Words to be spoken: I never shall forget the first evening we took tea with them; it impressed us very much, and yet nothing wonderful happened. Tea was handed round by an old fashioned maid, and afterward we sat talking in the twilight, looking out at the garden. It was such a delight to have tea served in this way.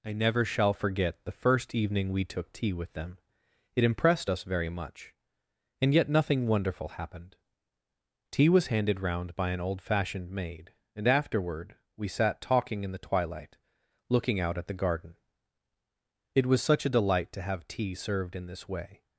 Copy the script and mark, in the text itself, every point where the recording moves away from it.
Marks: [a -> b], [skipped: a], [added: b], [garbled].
I never shall forget the first evening we took tea with them; it impressed us very much, and yet nothing wonderful happened. Tea was handed round by an old fashioned maid, and afterward we sat talking in the twilight, looking out at the garden. It was such a delight to have tea served in this way.